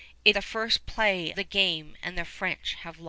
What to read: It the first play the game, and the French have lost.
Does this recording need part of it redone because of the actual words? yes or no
no